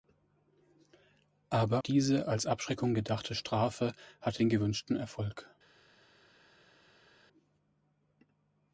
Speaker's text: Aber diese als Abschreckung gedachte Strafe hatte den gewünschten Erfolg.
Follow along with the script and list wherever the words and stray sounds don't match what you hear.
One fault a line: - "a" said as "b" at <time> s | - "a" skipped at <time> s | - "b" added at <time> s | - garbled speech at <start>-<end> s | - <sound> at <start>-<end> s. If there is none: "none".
none